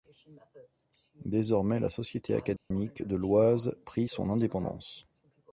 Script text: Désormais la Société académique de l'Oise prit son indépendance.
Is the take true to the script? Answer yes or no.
yes